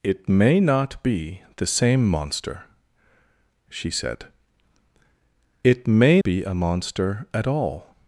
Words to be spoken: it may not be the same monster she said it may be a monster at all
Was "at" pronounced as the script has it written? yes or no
yes